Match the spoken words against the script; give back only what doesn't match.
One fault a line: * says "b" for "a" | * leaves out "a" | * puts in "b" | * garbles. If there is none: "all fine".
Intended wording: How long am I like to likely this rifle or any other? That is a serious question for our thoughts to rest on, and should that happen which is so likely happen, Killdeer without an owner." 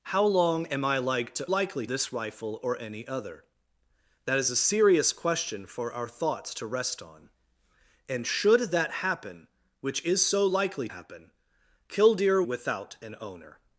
all fine